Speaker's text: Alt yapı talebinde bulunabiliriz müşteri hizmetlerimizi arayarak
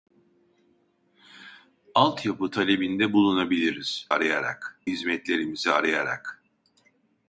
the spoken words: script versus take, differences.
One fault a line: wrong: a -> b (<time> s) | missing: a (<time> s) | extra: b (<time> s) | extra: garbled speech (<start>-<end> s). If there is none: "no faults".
wrong: müşteri -> arayarak (4.1 s)